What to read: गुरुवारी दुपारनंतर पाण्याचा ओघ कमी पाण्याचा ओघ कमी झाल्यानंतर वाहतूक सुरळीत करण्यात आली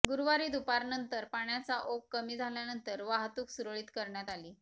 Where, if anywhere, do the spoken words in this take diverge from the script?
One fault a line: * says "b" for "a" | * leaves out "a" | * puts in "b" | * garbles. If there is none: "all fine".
* leaves out "पाण्याचा ओघ कमी"